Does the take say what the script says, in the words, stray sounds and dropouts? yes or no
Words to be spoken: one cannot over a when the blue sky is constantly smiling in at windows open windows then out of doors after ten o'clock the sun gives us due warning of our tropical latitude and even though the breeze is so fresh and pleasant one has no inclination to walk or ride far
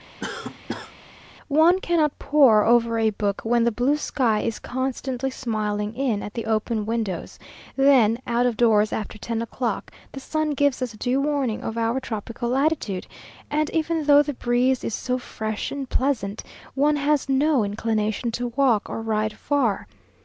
no